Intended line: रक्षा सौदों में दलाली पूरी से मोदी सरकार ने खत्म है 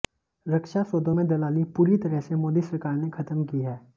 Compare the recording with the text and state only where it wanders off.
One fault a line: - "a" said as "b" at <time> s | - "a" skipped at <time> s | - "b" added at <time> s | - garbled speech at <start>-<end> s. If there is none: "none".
- "तरह" added at 2.1 s
- "की" added at 3.5 s